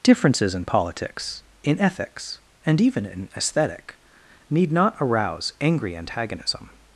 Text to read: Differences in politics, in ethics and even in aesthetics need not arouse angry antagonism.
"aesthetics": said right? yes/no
no